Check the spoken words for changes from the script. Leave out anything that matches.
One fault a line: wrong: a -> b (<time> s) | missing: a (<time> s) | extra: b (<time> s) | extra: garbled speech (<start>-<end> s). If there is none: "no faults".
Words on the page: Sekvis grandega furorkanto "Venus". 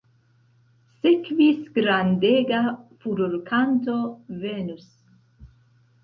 no faults